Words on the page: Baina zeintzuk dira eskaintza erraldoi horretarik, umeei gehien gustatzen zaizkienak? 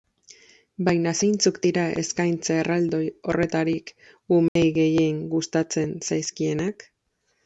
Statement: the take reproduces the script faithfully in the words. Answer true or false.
true